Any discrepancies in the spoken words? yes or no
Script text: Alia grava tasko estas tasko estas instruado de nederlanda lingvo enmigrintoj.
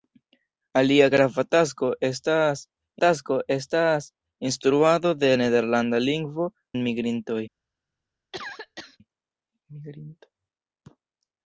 no